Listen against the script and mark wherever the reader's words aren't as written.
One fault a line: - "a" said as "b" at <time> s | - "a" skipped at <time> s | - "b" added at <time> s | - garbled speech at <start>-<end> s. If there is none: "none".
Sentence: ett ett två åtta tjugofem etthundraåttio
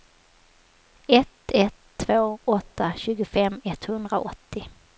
none